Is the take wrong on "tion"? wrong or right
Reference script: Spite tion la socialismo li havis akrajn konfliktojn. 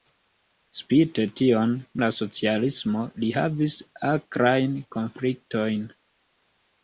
right